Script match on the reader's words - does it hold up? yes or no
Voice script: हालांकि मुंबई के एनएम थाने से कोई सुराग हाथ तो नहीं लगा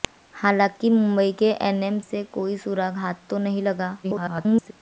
no